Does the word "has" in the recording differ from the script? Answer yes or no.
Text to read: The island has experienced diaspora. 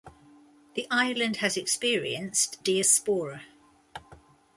no